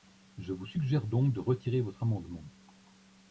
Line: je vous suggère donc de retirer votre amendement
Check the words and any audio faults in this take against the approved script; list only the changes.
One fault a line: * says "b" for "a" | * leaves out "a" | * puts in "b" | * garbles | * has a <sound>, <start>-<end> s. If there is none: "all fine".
all fine